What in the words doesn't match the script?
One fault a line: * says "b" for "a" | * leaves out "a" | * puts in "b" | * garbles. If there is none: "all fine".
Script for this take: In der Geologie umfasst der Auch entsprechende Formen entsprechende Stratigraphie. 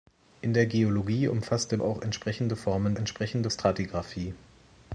all fine